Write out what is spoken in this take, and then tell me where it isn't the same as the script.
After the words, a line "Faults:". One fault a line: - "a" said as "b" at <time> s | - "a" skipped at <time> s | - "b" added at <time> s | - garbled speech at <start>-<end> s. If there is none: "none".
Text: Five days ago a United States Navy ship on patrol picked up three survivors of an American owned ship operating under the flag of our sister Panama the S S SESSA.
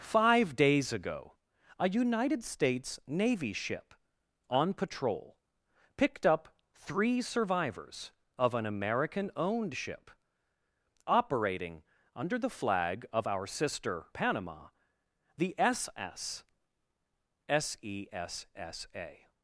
Five days ago a United States Navy ship on patrol picked up three survivors of an American owned ship operating under the flag of our sister Panama the S S SESSA.
Faults:
none